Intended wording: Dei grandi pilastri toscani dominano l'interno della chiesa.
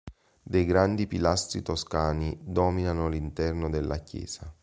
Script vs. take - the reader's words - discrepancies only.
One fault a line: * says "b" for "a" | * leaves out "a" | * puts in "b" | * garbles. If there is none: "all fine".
all fine